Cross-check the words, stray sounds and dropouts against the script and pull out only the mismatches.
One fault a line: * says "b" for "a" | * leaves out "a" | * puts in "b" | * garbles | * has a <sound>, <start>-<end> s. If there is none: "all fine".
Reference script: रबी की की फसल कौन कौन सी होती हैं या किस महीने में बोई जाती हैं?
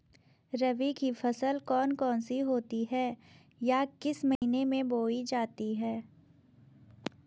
* leaves out "की"
* has a dropout, 4.4-4.4 s